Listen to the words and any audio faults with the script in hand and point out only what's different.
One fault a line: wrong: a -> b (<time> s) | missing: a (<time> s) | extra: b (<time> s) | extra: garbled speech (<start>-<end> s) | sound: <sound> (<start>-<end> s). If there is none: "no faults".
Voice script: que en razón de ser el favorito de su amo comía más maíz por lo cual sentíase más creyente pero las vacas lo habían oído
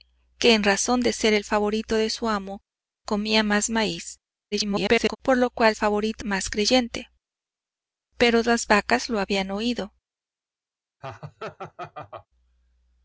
extra: garbled speech (4.5-5.2 s)
wrong: sentíase -> favorito (5.7 s)
sound: laugh (11.0-12.3 s)